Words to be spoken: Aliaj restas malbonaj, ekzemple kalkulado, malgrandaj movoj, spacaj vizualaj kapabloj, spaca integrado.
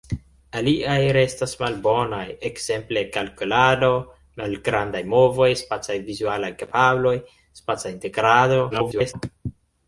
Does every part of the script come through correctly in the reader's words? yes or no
no